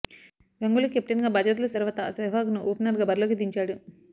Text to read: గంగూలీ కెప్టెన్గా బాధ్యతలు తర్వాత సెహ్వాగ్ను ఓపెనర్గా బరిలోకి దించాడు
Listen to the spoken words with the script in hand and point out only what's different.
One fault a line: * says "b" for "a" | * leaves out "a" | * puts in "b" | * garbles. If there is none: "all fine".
all fine